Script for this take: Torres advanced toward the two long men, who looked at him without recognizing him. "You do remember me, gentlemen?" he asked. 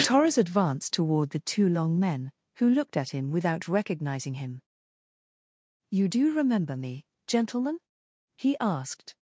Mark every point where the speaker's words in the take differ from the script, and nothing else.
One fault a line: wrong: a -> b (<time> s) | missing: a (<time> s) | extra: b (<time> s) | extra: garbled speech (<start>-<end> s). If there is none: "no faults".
no faults